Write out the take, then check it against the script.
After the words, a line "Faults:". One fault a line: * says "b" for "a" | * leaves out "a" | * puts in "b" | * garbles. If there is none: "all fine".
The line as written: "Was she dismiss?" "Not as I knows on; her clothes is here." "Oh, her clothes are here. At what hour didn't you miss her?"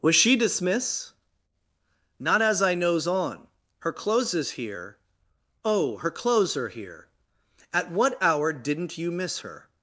"Was she dismiss?" "Not as I knows on; her clothes is here." "Oh, her clothes are here. At what hour didn't you miss her?"
Faults:
all fine